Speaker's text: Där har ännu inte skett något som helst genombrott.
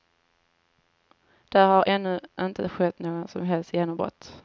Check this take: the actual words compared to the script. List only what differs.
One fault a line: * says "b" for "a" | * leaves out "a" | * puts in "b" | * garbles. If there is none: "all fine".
all fine